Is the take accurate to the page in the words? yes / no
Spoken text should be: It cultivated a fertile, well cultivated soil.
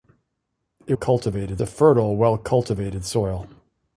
yes